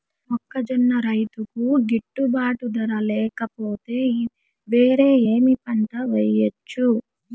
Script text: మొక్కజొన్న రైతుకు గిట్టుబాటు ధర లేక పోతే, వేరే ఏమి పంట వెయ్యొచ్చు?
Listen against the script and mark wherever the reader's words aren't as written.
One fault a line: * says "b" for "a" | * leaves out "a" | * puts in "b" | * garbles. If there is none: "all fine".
all fine